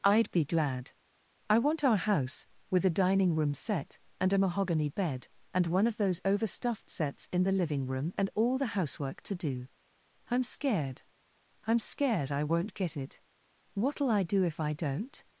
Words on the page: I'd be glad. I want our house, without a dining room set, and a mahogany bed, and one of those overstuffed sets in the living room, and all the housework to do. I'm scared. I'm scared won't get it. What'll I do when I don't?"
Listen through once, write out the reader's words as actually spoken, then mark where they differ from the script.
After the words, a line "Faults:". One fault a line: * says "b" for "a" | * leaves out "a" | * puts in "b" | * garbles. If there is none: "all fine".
I'd be glad. I want our house, with a dining room set, and a mahogany bed, and one of those overstuffed sets in the living room, and all the housework to do. I'm scared. I'm scared I won't get it. What'll I do if I don't?"
Faults:
* says "with" for "without"
* puts in "I"
* says "if" for "when"